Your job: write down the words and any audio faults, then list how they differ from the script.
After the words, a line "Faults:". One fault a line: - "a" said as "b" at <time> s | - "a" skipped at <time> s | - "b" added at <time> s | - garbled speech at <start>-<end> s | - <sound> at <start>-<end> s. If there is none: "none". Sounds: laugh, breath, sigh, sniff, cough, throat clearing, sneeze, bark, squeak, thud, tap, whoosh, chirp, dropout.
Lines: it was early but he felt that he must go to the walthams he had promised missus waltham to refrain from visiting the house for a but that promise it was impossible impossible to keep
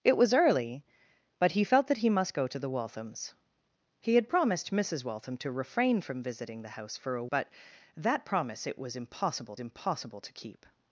it was early but he felt that he must go to the walthams he had promised missus waltham to refrain from visiting the house for a but that promise it was impossible impossible to keep
Faults:
none